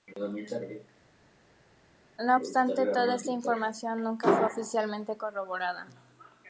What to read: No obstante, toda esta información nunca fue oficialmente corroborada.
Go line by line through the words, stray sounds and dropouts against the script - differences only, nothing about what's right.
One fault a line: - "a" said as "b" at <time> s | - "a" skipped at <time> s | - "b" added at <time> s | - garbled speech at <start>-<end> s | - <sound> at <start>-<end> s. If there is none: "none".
none